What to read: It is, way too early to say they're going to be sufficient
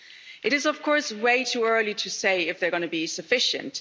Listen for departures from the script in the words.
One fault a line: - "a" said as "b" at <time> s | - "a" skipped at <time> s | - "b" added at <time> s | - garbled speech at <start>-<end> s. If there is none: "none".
- "of course" added at 0.7 s
- "if" added at 2.5 s